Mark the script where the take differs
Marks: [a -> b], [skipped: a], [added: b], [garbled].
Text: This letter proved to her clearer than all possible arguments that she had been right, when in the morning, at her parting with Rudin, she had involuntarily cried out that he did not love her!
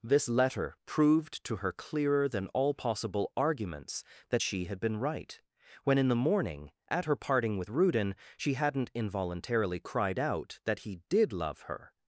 This letter proved to her clearer than all possible arguments that she had been right, when in the morning, at her parting with Rudin, she [had -> hadn't] involuntarily cried out that he did [skipped: not] love her!